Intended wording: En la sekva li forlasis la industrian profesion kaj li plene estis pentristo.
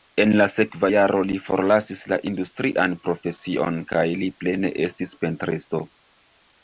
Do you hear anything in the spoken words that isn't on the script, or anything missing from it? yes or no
yes